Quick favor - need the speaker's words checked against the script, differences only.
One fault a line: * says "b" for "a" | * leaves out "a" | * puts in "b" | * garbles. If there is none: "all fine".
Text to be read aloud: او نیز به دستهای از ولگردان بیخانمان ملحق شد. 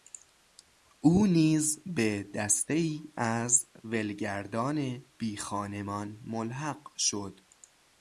all fine